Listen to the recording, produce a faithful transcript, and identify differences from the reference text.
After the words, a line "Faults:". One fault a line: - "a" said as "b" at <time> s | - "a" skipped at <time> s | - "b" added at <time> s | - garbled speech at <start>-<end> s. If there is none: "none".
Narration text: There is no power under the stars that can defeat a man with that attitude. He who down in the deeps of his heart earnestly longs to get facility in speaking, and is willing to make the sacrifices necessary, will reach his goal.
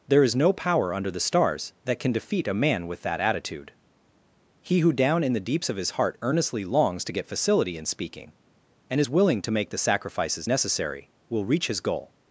There is no power under the stars that can defeat a man with that attitude. He who down in the deeps of his heart earnestly longs to get facility in speaking, and is willing to make the sacrifices necessary, will reach his goal.
Faults:
none